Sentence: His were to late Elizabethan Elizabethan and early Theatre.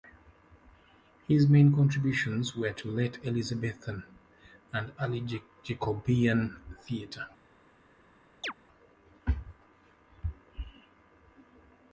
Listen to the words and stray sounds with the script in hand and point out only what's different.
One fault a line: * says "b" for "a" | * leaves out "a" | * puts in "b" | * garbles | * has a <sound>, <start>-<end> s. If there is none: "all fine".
* puts in "main contributions"
* leaves out "Elizabethan"
* puts in "Jacobean"
* has a chirp, 8.4-8.5 s